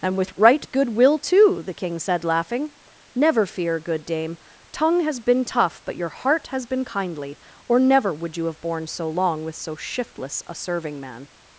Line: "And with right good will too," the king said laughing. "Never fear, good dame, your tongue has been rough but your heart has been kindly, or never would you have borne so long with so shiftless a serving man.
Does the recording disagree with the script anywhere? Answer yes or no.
yes